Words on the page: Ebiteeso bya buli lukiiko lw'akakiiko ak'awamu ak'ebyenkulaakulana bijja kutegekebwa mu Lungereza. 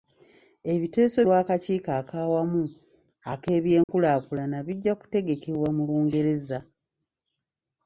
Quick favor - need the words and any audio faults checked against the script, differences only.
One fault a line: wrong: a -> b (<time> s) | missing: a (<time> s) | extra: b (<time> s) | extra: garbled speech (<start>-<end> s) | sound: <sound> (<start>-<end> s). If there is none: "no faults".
missing: bya buli lukiiko (1.2 s)
sound: dropout (3.8-3.9 s)